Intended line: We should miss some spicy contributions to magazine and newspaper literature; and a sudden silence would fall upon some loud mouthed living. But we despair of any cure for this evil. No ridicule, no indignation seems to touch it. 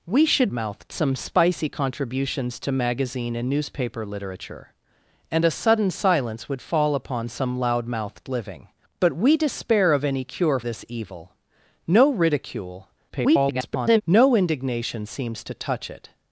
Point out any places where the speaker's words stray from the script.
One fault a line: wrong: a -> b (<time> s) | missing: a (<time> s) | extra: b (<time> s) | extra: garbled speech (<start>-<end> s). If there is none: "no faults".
wrong: miss -> mouthed (0.5 s)
missing: for (10.6 s)
extra: garbled speech (13.1-14.0 s)